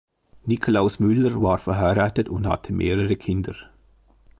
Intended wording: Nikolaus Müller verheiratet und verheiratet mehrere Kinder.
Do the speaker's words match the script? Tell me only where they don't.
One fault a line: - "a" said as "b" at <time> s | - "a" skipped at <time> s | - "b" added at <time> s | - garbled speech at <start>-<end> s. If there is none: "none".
- "war" added at 1.4 s
- "verheiratet" said as "hatte" at 2.5 s